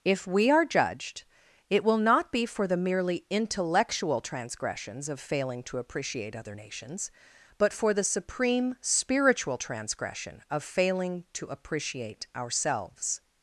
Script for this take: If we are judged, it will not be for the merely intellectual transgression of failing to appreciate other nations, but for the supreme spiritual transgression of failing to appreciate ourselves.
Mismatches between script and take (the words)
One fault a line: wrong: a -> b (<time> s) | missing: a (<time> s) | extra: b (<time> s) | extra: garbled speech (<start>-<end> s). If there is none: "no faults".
wrong: transgression -> transgressions (4.2 s)